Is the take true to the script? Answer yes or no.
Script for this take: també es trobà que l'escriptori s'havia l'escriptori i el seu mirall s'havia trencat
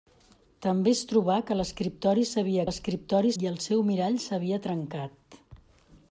yes